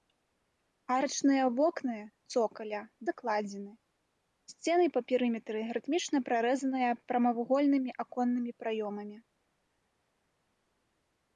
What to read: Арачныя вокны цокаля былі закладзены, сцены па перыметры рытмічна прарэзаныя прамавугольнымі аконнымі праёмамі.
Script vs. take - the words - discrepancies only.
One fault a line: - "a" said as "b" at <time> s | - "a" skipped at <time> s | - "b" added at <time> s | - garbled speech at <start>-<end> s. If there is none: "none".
- "былі" skipped at 2.8 s